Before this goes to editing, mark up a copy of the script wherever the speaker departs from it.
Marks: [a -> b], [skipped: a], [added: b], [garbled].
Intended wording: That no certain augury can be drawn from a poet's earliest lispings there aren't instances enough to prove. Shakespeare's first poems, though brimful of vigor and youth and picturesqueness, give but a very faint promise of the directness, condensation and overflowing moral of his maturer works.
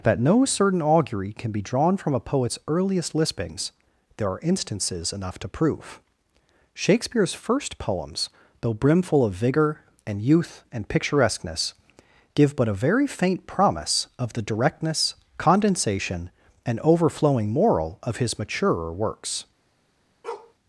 That no certain augury can be drawn from a poet's earliest lispings there [aren't -> are] instances enough to prove. Shakespeare's first poems, though brimful of vigor and youth and picturesqueness, give but a very faint promise of the directness, condensation and overflowing moral of his maturer works.